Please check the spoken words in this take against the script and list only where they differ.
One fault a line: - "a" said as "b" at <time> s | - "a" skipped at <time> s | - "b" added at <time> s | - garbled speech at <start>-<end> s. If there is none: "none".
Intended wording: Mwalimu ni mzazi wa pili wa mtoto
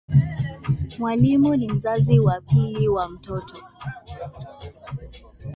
none